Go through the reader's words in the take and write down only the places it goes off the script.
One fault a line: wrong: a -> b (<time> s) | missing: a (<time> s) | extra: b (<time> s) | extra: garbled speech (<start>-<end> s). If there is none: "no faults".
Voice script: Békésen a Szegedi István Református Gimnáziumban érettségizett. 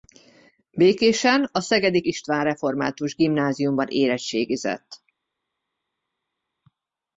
no faults